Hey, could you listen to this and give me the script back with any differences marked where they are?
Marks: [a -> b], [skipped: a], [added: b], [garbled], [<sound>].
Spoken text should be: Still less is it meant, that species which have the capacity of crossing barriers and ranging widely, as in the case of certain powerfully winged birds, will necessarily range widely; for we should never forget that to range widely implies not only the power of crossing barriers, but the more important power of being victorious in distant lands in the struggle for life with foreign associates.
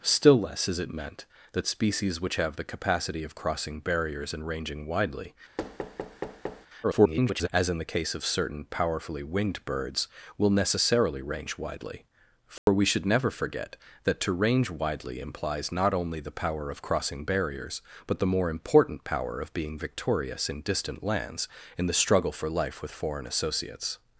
Still less is it meant, that species which have the capacity of crossing barriers and ranging widely, [thud] [garbled] as in the case of certain powerfully winged birds, will necessarily range widely; for [dropout] we should never forget that to range widely implies not only the power of crossing barriers, but the more important power of being victorious in distant lands in the struggle for life with foreign associates.